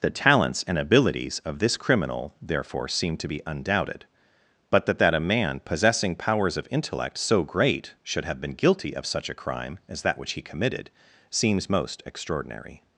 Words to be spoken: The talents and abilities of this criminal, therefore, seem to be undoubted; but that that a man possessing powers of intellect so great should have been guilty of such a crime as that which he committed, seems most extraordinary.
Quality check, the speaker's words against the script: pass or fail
pass